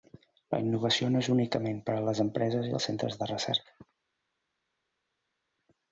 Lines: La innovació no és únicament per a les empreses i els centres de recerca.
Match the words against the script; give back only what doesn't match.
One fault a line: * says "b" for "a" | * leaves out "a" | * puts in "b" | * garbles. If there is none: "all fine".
all fine